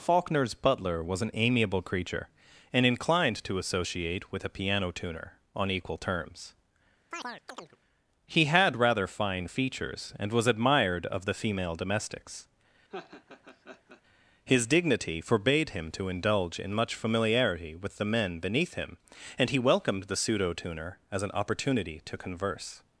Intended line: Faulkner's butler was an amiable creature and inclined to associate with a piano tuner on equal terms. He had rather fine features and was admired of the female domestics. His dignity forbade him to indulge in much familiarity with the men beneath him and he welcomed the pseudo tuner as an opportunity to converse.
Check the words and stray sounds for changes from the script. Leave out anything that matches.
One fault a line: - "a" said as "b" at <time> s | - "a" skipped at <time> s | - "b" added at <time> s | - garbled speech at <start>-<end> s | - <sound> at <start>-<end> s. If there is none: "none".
- chirp at 7.1-7.8 s
- laugh at 12.9-14.0 s